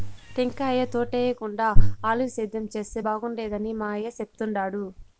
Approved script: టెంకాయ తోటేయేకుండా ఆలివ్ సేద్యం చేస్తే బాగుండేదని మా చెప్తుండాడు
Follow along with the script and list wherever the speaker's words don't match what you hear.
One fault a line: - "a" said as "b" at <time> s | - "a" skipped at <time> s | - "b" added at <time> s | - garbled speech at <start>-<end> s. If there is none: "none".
- "అయ్య" added at 3.9 s